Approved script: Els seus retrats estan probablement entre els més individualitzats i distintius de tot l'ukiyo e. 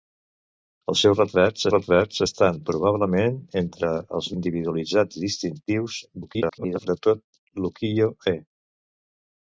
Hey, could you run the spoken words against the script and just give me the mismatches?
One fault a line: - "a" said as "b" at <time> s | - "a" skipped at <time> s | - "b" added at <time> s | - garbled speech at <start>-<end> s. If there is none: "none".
- "retrats" added at 1.7 s
- "més" skipped at 4.3 s
- garbled speech at 6.2-6.9 s